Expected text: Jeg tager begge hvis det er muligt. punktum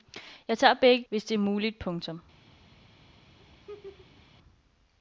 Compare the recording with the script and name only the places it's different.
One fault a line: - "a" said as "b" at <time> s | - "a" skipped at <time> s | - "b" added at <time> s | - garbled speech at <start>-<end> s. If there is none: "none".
none